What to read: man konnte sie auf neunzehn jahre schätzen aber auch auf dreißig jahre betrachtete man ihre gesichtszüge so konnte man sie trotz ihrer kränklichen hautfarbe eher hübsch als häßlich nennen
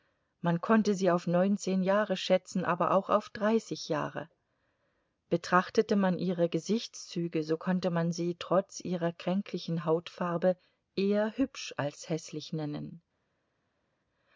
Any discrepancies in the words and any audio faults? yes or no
no